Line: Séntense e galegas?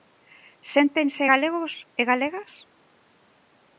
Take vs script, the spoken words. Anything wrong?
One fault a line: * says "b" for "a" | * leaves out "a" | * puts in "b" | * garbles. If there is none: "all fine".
* puts in "galegos"